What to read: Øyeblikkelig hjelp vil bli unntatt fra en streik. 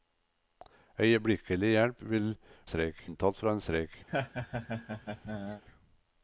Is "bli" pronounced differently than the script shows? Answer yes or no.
yes